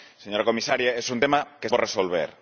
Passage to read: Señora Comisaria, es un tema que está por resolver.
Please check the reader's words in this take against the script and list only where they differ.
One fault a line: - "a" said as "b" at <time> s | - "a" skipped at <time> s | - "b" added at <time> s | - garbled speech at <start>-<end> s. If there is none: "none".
- "está" skipped at 1.7 s